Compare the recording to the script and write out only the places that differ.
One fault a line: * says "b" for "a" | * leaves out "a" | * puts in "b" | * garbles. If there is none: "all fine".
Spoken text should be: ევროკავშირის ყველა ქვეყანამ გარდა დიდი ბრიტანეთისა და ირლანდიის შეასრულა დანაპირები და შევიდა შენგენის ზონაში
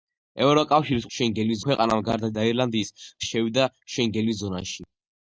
* says "შენგენის" for "ყველა"
* leaves out "დიდი ბრიტანეთისა"
* leaves out "შეასრულა დანაპირები"